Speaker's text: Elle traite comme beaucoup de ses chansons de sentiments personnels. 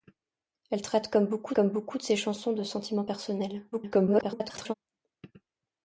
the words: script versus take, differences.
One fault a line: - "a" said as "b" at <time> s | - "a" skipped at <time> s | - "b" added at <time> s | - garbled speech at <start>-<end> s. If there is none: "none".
- "comme beaucoup" added at 1.5 s
- garbled speech at 3.7-4.7 s